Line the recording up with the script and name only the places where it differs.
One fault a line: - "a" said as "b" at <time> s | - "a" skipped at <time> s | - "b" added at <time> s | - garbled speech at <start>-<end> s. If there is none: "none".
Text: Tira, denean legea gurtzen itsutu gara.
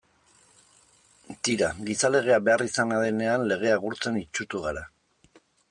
- "gizalegea beharrizana" added at 1.9 s